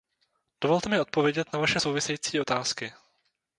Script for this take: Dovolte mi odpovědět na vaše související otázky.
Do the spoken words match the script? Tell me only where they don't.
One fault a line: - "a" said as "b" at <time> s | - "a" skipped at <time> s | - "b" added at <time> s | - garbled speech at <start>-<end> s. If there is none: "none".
none